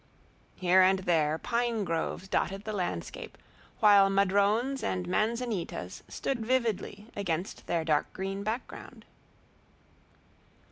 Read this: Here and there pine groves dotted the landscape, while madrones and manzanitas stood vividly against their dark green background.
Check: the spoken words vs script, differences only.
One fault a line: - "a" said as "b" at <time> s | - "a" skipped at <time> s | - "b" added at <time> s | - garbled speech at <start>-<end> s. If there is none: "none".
none